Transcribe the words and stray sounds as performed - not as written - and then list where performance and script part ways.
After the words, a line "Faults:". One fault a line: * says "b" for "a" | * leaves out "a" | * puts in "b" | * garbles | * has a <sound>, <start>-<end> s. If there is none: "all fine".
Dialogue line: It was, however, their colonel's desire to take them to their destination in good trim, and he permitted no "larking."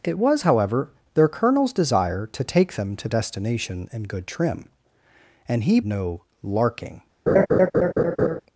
It was, however, their colonel's desire to take them to destination in good trim, and he no "larking."
Faults:
* leaves out "their"
* leaves out "permitted"
* has a laugh, 7.3-8.4 s